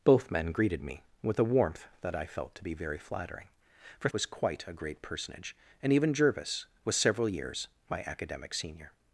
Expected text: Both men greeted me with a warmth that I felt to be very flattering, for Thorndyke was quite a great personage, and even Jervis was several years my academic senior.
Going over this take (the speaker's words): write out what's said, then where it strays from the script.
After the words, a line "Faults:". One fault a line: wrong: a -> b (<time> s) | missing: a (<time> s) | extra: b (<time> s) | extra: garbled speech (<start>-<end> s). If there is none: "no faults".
Both men greeted me with a warmth that I felt to be very flattering, for Was quite a great personage, and even Jervis was several years my academic senior.
Faults:
missing: Thorndyke (4.1 s)